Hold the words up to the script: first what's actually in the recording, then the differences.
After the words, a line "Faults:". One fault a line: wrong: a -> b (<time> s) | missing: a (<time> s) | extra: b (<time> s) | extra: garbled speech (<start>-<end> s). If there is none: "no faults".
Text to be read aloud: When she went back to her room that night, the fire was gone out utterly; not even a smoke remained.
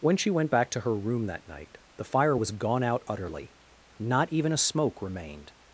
When she went back to her room that night, the fire was gone out utterly; not even a smoke remained.
Faults:
no faults